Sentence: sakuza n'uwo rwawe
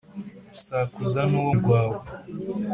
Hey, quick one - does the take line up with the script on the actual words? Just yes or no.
yes